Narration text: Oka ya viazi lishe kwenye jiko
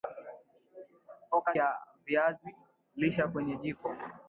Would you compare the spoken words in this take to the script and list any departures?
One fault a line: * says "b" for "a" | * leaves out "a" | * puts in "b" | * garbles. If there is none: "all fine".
all fine